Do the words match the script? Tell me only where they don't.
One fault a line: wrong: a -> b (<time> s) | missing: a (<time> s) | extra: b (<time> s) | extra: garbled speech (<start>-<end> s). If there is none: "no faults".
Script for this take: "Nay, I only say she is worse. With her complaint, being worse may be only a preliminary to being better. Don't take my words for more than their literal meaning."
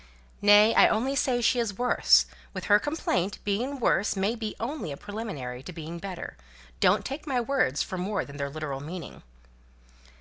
no faults